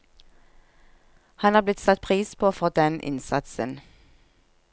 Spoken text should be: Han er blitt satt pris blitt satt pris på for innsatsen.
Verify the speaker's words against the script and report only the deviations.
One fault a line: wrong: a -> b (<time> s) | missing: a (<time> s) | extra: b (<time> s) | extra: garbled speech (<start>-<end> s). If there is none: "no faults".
missing: blitt satt pris (2.4 s)
extra: den (2.7 s)